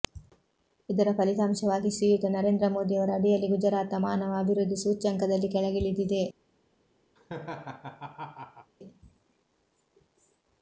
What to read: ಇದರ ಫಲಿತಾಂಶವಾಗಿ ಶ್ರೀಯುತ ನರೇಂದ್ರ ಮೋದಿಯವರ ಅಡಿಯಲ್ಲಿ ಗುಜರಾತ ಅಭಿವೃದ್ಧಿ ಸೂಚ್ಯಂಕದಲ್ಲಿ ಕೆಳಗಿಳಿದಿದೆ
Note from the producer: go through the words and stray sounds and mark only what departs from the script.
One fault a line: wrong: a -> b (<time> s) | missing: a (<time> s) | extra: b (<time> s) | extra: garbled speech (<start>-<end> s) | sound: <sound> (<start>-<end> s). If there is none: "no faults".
extra: ಮಾನವ (4.0 s)
sound: laugh (7.2-8.7 s)